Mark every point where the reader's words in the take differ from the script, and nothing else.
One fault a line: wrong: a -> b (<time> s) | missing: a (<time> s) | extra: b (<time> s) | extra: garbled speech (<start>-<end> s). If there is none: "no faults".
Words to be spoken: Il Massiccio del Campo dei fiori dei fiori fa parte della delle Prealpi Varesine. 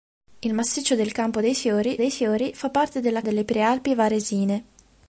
no faults